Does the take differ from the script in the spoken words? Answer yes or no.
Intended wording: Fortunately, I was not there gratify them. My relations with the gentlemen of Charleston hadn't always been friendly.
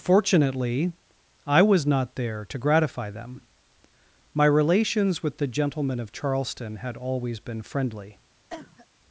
yes